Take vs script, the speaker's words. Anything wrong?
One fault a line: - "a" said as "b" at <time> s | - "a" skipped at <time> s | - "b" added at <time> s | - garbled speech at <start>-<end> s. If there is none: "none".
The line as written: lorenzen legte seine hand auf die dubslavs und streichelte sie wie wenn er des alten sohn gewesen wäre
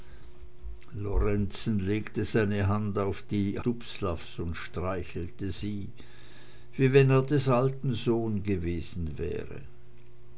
none